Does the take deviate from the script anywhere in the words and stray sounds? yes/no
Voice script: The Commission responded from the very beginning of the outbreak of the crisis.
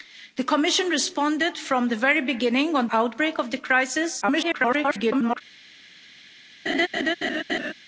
yes